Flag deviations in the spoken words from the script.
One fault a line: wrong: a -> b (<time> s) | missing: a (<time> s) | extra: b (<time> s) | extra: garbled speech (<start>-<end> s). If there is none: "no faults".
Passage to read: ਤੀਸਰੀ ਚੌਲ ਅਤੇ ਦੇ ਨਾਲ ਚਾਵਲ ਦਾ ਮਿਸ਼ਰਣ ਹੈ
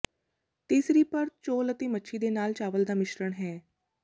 extra: ਪਰਤ (1.0 s)
extra: ਮੱਛੀ (1.9 s)